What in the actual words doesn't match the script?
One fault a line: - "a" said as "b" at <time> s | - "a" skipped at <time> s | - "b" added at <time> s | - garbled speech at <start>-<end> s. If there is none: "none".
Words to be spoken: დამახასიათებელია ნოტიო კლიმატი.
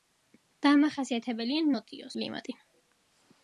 none